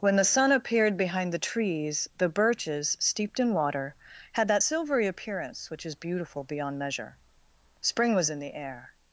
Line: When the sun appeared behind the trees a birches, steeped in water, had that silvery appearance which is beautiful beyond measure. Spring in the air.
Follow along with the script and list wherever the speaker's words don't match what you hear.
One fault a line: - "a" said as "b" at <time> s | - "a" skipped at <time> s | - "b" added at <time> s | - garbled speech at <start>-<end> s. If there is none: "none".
- "a" said as "the" at 2.2 s
- "was" added at 8.2 s